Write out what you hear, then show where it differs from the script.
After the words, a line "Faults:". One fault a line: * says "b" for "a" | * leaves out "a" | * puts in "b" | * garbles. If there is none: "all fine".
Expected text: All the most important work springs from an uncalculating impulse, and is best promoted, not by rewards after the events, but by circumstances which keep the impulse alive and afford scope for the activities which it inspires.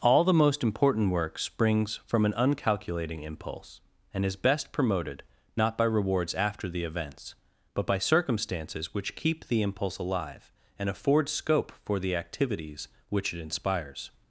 All the most important work springs from an uncalculating impulse, and is best promoted, not by rewards after the events, but by circumstances which keep the impulse alive and afford scope for the activities which it inspires.
Faults:
all fine